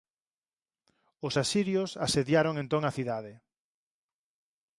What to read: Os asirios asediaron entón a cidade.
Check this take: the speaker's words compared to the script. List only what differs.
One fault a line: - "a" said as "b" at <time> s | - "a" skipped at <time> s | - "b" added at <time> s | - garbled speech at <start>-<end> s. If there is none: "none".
none